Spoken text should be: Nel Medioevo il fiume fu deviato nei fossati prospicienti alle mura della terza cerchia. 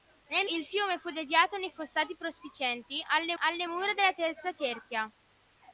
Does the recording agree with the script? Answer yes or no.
no